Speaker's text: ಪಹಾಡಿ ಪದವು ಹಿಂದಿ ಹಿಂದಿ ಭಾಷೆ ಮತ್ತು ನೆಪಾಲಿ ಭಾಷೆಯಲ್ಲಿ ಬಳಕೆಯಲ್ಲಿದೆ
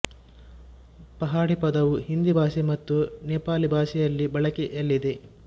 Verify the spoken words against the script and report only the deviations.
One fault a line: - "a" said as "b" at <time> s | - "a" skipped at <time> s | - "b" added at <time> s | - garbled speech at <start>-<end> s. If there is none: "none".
- "ಹಿಂದಿ" skipped at 2.3 s